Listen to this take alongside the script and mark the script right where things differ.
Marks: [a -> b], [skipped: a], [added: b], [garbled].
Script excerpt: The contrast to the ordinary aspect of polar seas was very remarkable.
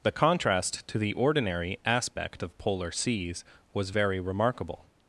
The contrast to the ordinary aspect of polar seas was very remarkable.